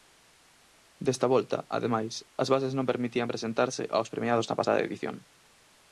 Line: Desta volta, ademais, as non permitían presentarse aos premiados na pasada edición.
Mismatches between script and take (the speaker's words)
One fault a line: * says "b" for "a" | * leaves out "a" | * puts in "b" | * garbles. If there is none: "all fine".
* puts in "bases"